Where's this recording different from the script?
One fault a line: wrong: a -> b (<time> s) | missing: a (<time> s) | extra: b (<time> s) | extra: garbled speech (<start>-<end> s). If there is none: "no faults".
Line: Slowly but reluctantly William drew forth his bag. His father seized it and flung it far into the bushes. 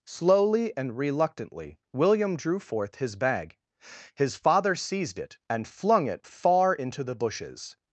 wrong: but -> and (0.8 s)